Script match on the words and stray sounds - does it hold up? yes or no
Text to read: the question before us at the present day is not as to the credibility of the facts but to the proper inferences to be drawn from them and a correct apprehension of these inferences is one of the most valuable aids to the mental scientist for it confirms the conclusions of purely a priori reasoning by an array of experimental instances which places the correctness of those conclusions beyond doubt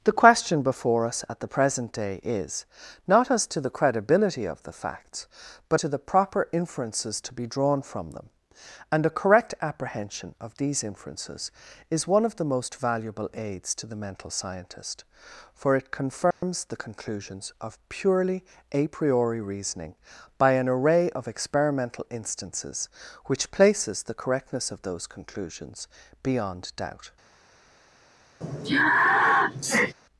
no